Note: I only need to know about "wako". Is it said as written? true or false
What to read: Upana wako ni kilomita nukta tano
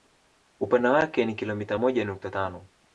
false